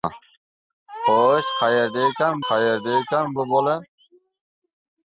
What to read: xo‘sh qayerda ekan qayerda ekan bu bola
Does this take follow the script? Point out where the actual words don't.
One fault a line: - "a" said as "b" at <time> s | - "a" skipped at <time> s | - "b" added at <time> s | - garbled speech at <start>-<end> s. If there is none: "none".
none